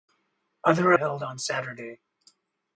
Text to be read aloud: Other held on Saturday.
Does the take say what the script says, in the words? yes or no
yes